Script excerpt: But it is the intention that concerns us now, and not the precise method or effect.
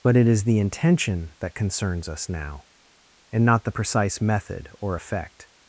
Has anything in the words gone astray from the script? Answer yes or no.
no